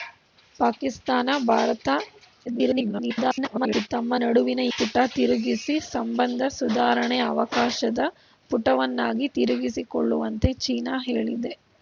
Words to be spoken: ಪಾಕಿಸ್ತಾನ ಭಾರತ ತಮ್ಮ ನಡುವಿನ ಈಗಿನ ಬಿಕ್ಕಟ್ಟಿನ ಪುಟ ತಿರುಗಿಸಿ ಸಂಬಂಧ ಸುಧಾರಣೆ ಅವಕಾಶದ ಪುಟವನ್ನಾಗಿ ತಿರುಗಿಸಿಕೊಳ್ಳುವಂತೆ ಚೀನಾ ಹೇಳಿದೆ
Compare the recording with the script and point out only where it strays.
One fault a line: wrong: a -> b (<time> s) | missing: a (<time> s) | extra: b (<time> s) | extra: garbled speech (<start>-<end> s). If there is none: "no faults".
extra: garbled speech (2.4-3.9 s)
missing: ಈಗಿನ ಬಿಕ್ಕಟ್ಟಿನ (4.6 s)